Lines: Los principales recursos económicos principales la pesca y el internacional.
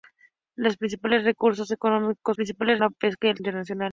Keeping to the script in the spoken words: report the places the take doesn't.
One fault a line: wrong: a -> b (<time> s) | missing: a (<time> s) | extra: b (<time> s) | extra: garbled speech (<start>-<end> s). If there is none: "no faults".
no faults